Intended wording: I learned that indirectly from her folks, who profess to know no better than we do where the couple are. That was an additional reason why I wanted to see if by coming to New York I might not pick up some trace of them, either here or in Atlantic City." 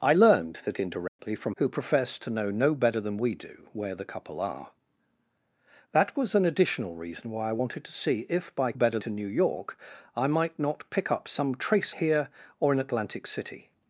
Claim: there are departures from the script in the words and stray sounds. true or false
true